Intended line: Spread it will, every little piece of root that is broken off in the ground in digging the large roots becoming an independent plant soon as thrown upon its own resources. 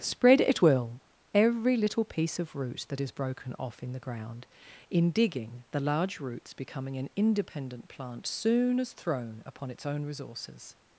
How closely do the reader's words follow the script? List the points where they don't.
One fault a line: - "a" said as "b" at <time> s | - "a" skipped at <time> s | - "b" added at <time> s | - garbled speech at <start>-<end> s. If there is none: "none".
none